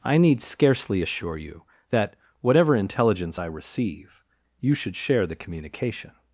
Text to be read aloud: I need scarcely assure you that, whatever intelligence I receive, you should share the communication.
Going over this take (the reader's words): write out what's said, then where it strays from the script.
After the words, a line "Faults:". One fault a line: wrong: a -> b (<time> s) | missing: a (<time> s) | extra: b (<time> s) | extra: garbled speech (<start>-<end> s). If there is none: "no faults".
I need scarcely assure you that, whatever intelligence I receive, you should share the communication.
Faults:
no faults